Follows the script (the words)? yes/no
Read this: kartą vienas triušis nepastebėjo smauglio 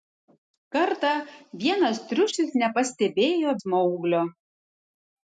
yes